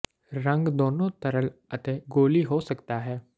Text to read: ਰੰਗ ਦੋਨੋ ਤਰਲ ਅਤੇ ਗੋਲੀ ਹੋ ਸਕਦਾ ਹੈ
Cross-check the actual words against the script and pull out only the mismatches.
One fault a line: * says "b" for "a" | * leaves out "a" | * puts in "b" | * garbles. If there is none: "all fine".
all fine